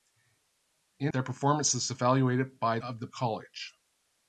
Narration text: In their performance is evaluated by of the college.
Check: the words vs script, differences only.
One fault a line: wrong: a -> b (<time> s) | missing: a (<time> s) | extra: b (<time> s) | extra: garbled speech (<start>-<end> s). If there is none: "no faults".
no faults